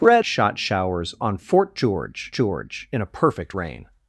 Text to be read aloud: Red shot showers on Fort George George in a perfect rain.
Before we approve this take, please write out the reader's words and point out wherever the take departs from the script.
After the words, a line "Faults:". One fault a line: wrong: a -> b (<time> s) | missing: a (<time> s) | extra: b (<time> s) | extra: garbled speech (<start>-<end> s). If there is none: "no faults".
Red shot showers on Fort George George in a perfect rain.
Faults:
no faults